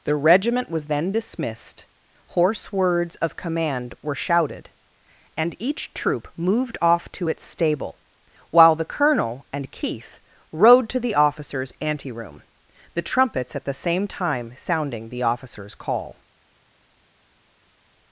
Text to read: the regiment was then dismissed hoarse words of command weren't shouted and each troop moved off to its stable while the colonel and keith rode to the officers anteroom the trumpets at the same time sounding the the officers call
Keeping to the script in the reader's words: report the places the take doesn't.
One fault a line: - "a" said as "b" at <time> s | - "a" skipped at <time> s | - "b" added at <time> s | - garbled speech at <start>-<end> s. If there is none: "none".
- "weren't" said as "were" at 4.0 s
- "the" skipped at 15.2 s